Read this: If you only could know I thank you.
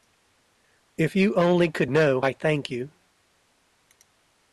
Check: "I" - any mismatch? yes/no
no